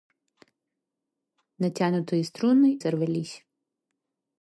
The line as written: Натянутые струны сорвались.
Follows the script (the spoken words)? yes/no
yes